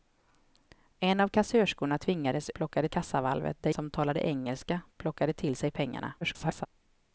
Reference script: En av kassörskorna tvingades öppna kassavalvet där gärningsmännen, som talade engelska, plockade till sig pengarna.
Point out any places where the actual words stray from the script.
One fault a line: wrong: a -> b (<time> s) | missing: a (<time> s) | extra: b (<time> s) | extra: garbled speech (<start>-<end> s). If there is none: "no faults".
wrong: öppna -> plockade (2.5 s)
missing: gärningsmännen (3.7 s)
extra: garbled speech (6.2-6.7 s)